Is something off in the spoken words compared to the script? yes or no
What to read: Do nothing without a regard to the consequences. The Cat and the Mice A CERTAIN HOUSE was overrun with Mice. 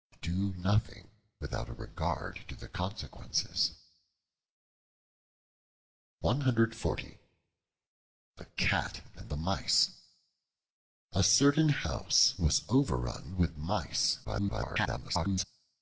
yes